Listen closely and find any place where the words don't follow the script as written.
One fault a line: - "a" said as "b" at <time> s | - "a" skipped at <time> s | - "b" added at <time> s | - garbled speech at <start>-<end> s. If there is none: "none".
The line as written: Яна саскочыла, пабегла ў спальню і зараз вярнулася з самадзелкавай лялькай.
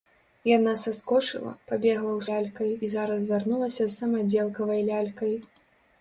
- "спальню" said as "лялькай" at 2.3 s